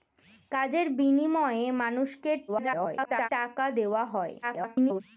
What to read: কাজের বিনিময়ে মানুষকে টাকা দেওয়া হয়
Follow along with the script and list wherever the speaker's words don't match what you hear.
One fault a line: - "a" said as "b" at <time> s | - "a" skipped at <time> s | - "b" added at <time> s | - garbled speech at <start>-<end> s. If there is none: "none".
- garbled speech at 2.5-3.3 s
- garbled speech at 4.4-5.0 s